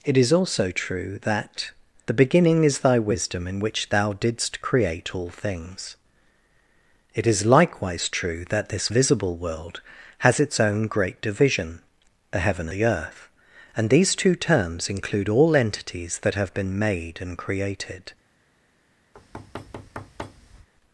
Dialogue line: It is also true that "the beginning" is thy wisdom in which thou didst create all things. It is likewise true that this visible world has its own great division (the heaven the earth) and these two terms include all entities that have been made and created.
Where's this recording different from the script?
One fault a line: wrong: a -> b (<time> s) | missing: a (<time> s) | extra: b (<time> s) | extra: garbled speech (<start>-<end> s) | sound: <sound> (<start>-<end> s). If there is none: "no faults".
sound: thud (19.1-20.7 s)